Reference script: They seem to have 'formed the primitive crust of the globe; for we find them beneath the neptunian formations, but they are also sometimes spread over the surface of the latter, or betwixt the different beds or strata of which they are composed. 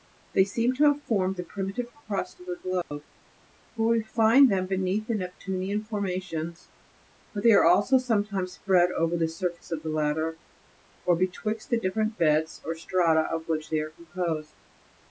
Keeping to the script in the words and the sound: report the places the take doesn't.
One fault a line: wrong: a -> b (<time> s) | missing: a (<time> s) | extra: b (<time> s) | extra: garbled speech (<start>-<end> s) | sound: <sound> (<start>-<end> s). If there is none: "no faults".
sound: dropout (2.8-2.9 s)